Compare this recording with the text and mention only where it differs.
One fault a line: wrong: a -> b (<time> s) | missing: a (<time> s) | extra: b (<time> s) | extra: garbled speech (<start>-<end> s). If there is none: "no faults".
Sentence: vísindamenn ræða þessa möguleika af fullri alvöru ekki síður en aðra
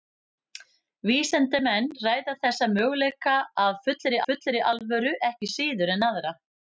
extra: fullri (4.3 s)